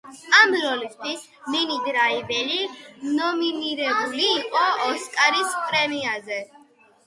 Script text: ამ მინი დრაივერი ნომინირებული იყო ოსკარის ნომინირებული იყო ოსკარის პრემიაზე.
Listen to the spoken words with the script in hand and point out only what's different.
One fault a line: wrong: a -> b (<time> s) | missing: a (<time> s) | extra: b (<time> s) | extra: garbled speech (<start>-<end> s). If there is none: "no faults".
extra: როლისთვის (0.6 s)
missing: ნომინირებული იყო ოსკარის (5.6 s)